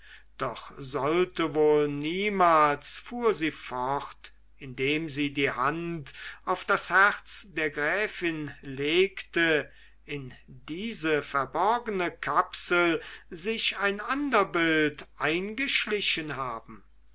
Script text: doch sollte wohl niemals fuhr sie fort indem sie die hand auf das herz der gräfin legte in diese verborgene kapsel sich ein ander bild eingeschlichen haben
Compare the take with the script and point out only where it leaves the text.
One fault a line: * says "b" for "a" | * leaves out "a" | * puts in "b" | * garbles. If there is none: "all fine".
all fine